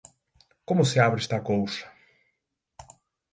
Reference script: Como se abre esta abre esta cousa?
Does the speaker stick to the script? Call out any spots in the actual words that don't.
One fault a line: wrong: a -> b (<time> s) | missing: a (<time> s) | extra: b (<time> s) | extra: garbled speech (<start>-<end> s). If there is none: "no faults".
missing: abre esta (1.4 s)